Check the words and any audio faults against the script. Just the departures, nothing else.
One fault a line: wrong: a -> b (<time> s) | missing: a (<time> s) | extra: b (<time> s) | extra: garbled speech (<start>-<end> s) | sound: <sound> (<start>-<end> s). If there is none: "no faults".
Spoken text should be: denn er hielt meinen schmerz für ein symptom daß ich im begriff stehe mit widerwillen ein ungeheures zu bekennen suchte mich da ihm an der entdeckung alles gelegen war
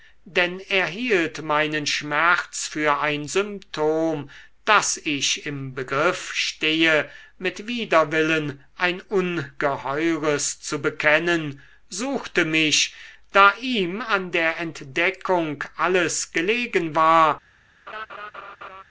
sound: laugh (17.9-18.8 s)